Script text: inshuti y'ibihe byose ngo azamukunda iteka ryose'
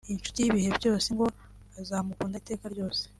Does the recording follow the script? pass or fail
pass